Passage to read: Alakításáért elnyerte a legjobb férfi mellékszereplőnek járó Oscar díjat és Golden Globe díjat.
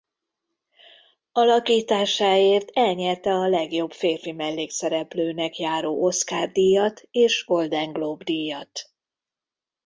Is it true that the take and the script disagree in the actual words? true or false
false